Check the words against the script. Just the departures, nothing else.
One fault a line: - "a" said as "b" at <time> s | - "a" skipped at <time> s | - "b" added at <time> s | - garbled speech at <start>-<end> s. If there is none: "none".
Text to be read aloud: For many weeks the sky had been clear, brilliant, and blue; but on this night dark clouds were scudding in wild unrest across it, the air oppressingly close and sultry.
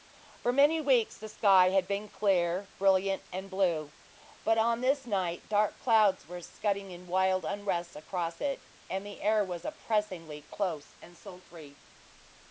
- "and" added at 8.9 s
- "was" added at 9.4 s